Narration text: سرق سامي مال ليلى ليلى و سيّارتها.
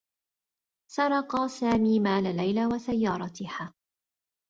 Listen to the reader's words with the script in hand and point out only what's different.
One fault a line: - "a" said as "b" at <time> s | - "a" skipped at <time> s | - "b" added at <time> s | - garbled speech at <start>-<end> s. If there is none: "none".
- "ليلى" skipped at 2.6 s